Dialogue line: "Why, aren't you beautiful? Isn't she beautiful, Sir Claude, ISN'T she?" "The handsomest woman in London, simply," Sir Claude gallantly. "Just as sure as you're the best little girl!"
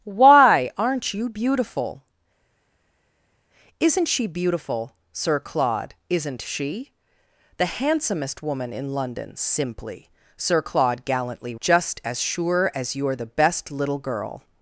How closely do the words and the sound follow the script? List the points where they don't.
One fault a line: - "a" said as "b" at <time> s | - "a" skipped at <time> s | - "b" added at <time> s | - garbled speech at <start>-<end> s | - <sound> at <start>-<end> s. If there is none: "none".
none